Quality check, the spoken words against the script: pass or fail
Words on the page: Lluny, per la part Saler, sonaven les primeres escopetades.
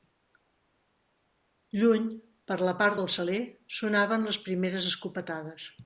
fail